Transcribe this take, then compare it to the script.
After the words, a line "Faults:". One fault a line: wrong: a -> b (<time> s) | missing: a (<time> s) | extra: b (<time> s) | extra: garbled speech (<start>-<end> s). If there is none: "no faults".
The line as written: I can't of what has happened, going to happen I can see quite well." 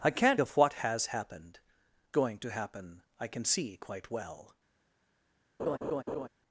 I can't of what has happened, going to happen I can see quite well."
Faults:
no faults